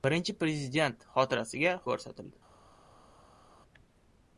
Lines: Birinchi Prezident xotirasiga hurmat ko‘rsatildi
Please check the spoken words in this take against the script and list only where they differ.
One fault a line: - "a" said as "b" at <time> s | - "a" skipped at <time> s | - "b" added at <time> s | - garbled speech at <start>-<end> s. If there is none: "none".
- "hurmat" skipped at 1.8 s